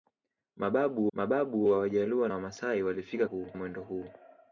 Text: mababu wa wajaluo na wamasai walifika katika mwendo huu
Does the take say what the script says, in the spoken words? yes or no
no